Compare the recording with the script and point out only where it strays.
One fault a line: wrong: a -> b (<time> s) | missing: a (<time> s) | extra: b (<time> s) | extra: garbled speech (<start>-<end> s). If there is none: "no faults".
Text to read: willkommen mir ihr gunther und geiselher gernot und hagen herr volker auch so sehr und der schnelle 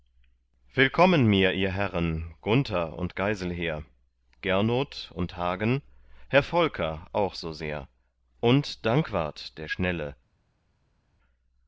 extra: herren (1.7 s)
extra: dankwart (8.8 s)